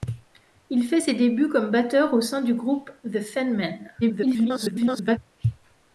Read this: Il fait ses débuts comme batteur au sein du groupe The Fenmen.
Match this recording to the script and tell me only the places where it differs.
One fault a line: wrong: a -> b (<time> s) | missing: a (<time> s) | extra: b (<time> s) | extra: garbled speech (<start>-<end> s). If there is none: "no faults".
extra: garbled speech (4.0-5.2 s)